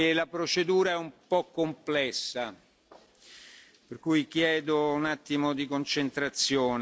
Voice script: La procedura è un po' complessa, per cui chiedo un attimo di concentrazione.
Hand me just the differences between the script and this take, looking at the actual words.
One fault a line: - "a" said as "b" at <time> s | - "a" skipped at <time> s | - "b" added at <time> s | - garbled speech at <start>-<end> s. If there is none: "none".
none